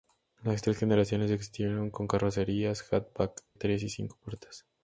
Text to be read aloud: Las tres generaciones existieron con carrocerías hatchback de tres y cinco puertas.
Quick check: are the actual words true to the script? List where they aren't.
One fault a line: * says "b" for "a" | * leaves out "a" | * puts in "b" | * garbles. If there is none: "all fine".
* leaves out "de"